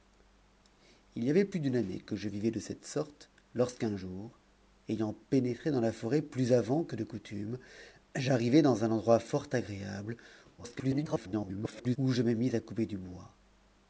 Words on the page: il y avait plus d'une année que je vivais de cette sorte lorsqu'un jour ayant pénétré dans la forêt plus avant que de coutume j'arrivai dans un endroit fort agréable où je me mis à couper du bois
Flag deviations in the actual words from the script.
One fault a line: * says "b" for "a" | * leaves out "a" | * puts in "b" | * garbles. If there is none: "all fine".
* garbles